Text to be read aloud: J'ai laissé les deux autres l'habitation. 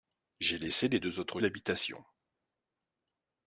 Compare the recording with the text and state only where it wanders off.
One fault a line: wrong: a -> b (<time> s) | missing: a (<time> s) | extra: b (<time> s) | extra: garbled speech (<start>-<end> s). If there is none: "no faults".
no faults